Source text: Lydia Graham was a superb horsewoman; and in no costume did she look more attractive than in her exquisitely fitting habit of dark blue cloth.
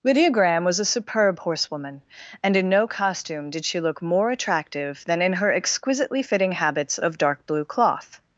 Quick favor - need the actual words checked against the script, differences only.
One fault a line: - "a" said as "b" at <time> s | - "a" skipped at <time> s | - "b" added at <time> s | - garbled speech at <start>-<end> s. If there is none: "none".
- "habit" said as "habits" at 6.5 s